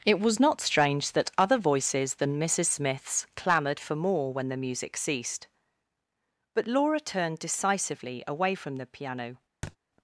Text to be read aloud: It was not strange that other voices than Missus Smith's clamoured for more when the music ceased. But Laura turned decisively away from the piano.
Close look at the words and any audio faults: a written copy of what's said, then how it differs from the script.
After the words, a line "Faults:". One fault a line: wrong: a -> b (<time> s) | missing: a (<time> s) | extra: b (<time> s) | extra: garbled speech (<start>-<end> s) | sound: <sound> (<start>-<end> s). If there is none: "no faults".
It was not strange that other voices than Missus Smith's clamoured for more when the music ceased. But Laura turned decisively away from the piano.
Faults:
sound: thud (9.6-9.8 s)